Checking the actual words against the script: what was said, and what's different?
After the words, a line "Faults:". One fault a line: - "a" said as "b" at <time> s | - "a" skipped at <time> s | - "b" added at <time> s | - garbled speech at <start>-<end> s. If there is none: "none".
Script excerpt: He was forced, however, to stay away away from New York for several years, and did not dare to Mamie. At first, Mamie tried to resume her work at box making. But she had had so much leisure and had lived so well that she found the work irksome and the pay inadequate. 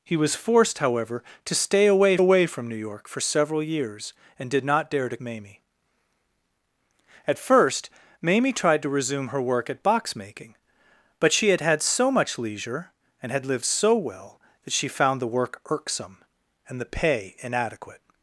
He was forced, however, to stay away away from New York for several years, and did not dare to Mamie. At first, Mamie tried to resume her work at box making. But she had had so much leisure and had lived so well that she found the work irksome and the pay inadequate.
Faults:
none